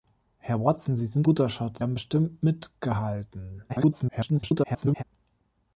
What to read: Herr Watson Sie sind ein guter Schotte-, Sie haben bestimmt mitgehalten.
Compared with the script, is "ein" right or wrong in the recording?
wrong